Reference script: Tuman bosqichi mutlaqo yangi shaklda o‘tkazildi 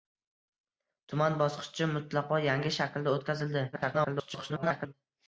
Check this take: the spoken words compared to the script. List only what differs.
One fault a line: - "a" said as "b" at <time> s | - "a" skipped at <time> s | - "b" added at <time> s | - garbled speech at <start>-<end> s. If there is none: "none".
- garbled speech at 3.7-4.9 s